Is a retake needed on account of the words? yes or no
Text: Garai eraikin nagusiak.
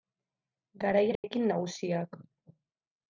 no